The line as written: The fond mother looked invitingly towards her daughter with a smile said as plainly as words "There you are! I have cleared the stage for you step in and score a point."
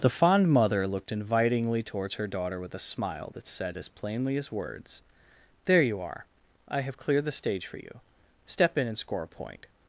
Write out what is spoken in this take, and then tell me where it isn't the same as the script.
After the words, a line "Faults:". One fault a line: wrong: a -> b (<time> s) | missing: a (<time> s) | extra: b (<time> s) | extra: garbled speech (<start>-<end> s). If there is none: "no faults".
The fond mother looked invitingly towards her daughter with a smile that said as plainly as words "There you are! I have cleared the stage for you step in and score a point."
Faults:
extra: that (3.4 s)